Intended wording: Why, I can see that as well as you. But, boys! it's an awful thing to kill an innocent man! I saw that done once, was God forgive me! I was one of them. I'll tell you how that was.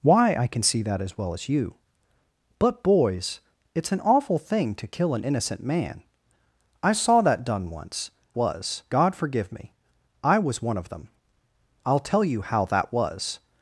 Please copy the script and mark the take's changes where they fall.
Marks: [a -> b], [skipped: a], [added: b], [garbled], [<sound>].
Why, I can see that as well as you. But, boys! it's an awful thing to kill an innocent man! I saw that done once, was God forgive me! I was one of them. I'll tell you how that was.